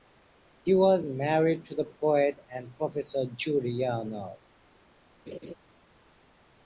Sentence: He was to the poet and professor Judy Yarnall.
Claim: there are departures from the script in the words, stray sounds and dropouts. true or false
true